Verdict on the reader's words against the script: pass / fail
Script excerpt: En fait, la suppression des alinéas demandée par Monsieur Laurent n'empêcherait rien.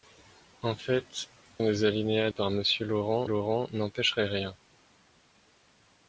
fail